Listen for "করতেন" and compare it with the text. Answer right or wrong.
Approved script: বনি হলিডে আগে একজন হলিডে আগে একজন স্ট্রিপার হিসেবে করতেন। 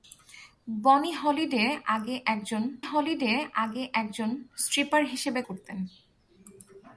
right